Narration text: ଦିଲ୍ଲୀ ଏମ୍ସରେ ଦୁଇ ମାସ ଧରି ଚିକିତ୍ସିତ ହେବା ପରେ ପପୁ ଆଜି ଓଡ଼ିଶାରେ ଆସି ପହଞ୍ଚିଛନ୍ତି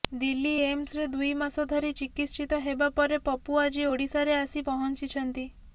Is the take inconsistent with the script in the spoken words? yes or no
no